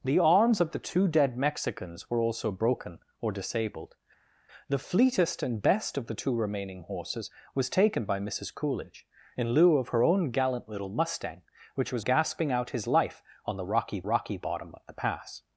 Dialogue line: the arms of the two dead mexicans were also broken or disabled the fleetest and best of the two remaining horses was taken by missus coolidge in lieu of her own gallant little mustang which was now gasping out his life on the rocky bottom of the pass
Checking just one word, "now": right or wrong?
wrong